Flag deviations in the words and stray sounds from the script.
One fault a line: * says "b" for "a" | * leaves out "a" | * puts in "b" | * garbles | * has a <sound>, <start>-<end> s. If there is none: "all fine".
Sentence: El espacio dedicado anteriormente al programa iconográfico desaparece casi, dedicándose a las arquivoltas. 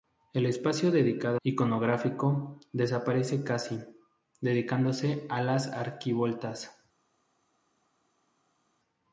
* leaves out "anteriormente al programa"